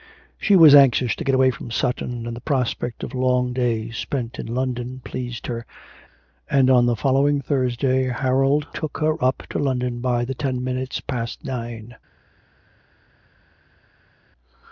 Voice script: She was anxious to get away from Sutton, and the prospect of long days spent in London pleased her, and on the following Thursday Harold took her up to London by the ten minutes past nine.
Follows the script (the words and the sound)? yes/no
yes